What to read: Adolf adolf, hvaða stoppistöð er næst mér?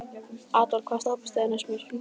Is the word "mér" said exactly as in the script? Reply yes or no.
yes